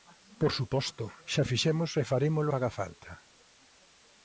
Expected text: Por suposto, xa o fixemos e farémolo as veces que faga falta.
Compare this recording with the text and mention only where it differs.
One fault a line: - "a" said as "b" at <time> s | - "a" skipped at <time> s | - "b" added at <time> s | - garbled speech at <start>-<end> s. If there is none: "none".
- "as veces que" skipped at 2.5 s